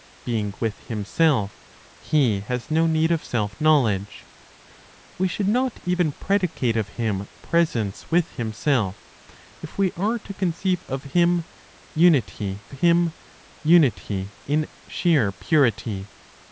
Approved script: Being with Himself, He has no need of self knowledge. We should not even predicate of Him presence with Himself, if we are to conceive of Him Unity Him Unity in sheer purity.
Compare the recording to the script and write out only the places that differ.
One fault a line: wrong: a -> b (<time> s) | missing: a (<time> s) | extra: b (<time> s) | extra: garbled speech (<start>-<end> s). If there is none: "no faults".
no faults